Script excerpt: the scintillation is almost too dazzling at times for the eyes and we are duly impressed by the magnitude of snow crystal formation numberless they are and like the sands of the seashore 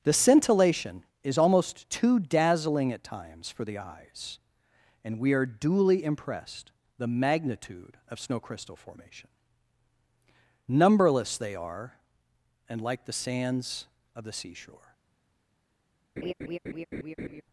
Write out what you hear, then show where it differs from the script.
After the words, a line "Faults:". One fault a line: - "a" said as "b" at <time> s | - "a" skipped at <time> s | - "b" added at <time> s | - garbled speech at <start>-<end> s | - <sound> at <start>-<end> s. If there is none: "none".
the scintillation is almost too dazzling at times for the eyes and we are duly impressed the magnitude of snow crystal formation numberless they are and like the sands of the seashore
Faults:
- "by" skipped at 6.7 s
- laugh at 16.2-17.4 s